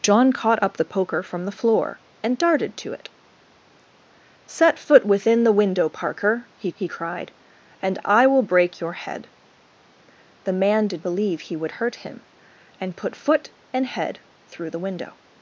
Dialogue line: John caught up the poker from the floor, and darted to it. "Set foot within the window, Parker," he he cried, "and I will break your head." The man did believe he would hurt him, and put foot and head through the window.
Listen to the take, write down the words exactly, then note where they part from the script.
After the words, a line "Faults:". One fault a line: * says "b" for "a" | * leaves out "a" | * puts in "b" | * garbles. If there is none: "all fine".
John caught up the poker from the floor, and darted to it. "Set foot within the window, Parker," he he cried, "and I will break your head." The man did believe he would hurt him, and put foot and head through the window.
Faults:
all fine